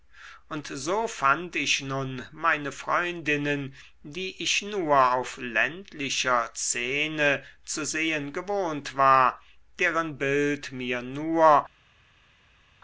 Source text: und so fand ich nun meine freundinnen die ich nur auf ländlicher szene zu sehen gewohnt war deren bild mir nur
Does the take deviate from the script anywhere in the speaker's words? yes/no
no